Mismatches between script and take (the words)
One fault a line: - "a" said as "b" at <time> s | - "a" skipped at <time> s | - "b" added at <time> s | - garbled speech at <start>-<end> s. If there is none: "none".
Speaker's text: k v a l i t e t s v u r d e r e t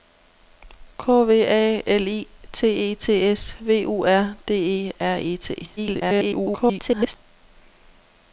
- garbled speech at 5.8-7.2 s